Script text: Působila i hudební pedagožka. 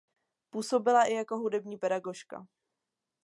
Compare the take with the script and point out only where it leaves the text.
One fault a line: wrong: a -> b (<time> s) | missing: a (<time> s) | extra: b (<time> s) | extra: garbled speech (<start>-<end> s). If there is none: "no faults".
extra: jako (1.1 s)